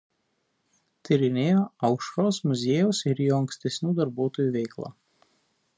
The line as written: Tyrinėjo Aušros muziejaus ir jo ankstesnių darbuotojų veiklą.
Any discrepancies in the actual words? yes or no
no